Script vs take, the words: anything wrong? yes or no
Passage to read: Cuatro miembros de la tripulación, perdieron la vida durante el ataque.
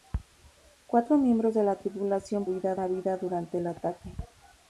yes